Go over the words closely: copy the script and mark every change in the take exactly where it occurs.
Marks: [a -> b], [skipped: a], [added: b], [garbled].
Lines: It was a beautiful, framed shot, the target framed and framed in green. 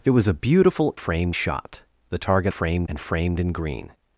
It was a beautiful, framed shot, the target framed and framed in green.